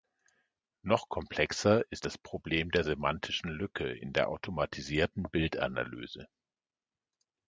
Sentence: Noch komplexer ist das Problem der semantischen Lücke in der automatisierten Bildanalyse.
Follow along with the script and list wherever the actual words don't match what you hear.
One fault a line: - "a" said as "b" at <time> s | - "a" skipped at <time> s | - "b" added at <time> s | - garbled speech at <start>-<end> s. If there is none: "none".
none